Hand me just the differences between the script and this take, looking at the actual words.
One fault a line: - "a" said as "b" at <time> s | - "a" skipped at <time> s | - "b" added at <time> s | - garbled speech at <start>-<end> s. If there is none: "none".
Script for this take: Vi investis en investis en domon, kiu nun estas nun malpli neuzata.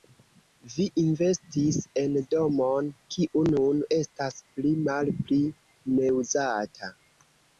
- "investis en" skipped at 2.1 s
- "nun" said as "pli" at 4.5 s